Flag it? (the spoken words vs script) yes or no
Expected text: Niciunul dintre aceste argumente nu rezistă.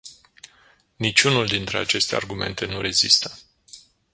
no